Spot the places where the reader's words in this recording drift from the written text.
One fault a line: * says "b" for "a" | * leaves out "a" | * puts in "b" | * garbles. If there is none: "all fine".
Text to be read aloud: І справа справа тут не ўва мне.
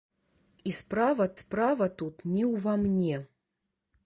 all fine